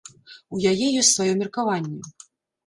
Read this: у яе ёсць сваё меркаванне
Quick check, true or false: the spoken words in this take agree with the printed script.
true